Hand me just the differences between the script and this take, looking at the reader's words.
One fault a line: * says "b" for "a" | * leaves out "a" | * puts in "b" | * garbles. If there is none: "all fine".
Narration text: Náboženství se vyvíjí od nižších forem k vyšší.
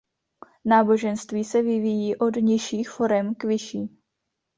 all fine